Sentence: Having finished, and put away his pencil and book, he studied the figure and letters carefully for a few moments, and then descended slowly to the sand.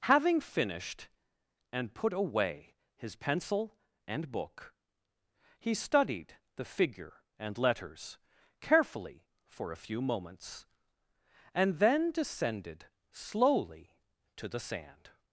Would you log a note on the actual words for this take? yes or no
no